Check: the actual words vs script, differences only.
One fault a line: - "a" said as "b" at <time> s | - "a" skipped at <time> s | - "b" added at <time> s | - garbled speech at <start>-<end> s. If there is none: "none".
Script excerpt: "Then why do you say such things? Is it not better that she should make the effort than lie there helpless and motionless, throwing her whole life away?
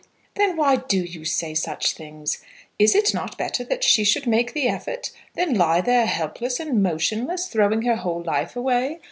none